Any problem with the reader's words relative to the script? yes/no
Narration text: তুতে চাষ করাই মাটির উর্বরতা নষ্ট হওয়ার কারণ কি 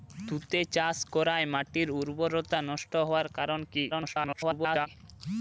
yes